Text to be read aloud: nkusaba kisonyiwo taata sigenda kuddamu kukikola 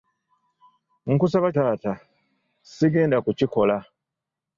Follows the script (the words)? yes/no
no